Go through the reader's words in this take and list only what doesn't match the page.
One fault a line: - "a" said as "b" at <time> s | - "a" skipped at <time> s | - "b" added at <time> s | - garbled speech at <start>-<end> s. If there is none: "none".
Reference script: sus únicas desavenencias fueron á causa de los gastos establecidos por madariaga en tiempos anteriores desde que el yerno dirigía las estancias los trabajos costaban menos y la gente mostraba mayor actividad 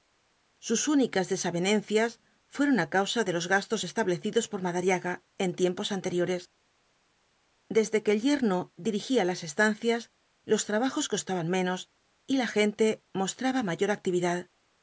none